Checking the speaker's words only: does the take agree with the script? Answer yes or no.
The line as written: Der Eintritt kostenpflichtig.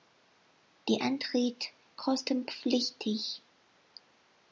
yes